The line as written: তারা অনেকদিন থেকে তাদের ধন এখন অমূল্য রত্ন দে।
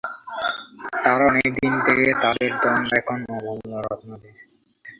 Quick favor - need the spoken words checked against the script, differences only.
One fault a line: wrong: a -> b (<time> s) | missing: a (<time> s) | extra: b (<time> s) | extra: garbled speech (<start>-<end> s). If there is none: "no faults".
no faults